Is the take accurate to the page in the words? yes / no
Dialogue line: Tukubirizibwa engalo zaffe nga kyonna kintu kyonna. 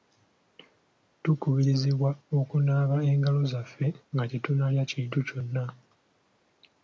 no